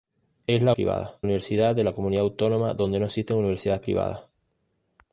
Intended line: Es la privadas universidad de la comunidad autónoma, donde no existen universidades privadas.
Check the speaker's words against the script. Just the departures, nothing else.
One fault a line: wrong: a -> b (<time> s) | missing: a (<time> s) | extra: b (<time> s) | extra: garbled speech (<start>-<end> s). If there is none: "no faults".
no faults